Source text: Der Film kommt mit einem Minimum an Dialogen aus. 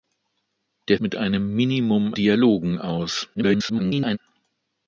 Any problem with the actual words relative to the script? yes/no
yes